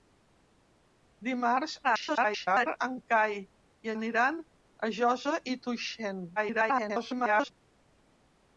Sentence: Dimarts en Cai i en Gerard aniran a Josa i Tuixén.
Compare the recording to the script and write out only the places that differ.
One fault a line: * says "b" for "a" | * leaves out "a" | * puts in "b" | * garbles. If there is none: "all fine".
* garbles
* leaves out "en Gerard"
* garbles